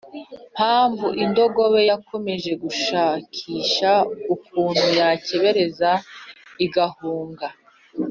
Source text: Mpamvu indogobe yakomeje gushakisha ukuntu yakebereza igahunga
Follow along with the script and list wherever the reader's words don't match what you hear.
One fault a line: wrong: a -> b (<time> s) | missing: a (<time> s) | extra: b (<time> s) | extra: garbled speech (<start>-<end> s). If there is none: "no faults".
no faults